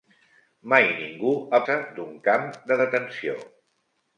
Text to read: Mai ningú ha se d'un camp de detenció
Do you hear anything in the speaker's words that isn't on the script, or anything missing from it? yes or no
no